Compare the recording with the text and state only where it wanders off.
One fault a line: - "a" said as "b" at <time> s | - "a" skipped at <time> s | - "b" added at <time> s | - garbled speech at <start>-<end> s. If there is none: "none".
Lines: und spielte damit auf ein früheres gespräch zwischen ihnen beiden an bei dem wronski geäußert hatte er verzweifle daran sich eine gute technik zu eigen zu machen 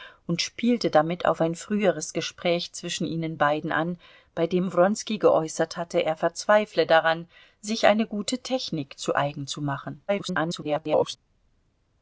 - garbled speech at 10.1-11.2 s